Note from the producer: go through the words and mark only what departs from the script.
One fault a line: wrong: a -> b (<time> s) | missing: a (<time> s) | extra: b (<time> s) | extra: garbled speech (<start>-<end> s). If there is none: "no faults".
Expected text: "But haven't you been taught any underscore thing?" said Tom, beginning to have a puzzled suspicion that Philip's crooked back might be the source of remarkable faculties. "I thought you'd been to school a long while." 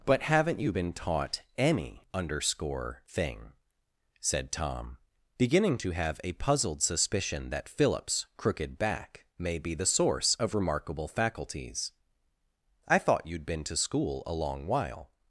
wrong: might -> may (9.4 s)